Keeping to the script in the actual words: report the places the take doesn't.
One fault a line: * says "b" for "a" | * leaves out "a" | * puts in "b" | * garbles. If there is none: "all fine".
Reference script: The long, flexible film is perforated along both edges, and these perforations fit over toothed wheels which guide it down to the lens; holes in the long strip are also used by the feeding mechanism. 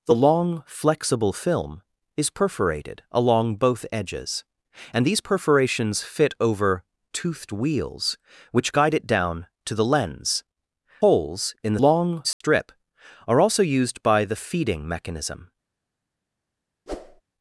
all fine